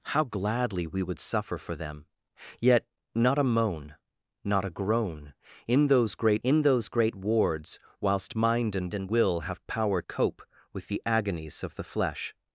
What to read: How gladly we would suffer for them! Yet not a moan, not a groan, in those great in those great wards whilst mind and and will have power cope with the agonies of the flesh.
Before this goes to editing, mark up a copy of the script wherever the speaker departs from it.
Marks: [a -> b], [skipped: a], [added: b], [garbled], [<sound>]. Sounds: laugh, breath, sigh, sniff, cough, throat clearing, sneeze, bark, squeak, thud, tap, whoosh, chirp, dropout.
How gladly we would suffer for them! Yet not a moan, not a groan, in those great in those great wards whilst mind and and will have power cope with the agonies of the flesh.